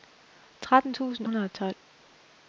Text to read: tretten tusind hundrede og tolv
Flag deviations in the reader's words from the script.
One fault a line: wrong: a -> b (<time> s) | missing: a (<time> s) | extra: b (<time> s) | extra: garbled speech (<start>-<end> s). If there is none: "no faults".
no faults